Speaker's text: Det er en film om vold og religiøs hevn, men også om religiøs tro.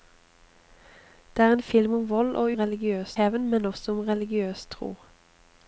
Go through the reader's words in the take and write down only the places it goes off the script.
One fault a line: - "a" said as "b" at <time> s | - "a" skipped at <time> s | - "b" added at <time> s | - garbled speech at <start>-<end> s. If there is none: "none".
none